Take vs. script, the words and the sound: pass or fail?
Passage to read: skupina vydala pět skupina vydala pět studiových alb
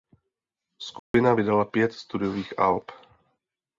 fail